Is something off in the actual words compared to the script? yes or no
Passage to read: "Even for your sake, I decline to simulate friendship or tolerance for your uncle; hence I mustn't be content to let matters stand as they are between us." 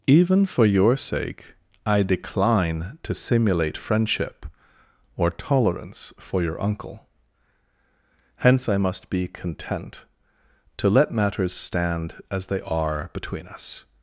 yes